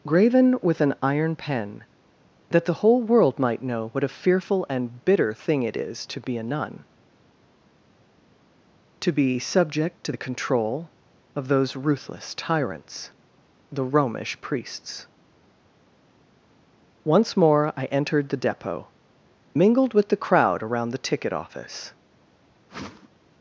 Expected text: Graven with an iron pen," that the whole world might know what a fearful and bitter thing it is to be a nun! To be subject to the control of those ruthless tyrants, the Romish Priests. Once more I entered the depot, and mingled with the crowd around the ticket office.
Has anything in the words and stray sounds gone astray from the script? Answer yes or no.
yes